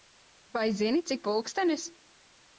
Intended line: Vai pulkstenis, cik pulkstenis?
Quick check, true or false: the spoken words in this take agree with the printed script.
false